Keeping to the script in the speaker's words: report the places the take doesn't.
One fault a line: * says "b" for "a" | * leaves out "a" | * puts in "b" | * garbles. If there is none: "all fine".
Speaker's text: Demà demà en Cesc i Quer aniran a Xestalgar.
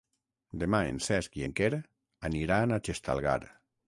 * leaves out "demà"
* puts in "en"